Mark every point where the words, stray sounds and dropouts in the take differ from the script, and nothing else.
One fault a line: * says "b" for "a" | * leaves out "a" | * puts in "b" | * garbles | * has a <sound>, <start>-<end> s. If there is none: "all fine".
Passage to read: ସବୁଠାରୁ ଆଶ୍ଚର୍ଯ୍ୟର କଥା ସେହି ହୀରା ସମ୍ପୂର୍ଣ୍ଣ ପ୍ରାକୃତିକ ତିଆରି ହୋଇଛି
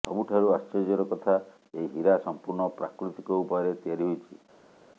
* says "ଏହି" for "ସେହି"
* puts in "ଉପାୟରେ"